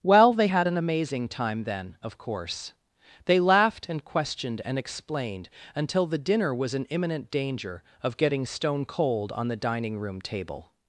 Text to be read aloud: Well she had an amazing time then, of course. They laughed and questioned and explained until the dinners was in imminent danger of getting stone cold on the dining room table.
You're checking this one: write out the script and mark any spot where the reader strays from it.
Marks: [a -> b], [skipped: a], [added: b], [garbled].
Well [she -> they] had an amazing time then, of course. They laughed and questioned and explained until the [dinners -> dinner] was in imminent danger of getting stone cold on the dining room table.